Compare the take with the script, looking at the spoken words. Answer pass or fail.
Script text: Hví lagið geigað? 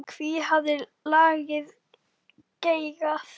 fail